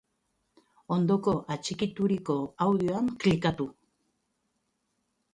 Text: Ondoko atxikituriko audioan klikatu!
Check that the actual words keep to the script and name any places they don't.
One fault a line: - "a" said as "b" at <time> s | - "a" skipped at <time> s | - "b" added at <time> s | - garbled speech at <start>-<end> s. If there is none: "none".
none